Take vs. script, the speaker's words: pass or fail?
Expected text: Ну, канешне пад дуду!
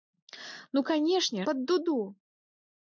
pass